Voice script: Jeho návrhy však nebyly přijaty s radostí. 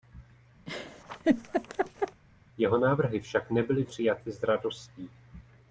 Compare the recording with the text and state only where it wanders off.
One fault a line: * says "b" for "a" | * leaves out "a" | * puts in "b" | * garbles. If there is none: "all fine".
all fine